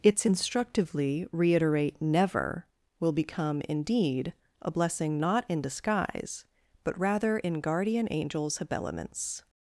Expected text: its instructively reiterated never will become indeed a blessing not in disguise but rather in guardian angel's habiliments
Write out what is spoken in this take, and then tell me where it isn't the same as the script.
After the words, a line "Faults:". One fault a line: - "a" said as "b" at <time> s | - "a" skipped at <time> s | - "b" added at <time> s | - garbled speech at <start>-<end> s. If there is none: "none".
its instructively reiterate never will become indeed a blessing not in disguise but rather in guardian angel's habiliments
Faults:
- "reiterated" said as "reiterate" at 1.3 s